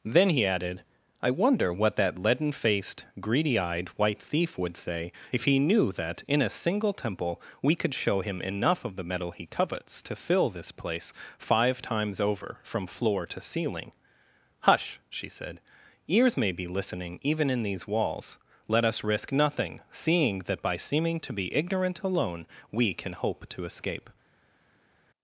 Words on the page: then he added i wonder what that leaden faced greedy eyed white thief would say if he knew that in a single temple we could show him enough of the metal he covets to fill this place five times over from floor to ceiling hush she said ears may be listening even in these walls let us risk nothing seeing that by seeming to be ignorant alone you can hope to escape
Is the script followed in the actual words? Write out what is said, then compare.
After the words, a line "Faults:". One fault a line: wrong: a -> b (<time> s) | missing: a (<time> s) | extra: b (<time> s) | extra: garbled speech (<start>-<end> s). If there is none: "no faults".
then he added i wonder what that leaden faced greedy eyed white thief would say if he knew that in a single temple we could show him enough of the metal he covets to fill this place five times over from floor to ceiling hush she said ears may be listening even in these walls let us risk nothing seeing that by seeming to be ignorant alone we can hope to escape
Faults:
wrong: you -> we (22.7 s)